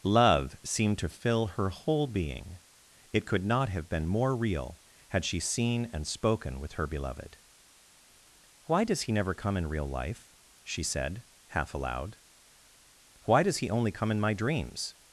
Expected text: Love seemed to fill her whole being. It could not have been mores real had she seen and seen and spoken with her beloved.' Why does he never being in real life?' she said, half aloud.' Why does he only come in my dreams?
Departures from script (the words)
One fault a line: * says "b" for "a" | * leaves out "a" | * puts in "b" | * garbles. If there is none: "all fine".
* says "more" for "mores"
* leaves out "seen and"
* says "come" for "being"